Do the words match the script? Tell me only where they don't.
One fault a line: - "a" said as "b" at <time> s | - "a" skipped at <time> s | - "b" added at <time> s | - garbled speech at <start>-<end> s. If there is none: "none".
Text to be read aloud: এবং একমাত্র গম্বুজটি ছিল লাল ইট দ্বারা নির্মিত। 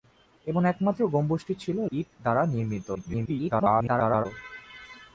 - "লাল" skipped at 1.8 s
- garbled speech at 2.9-4.3 s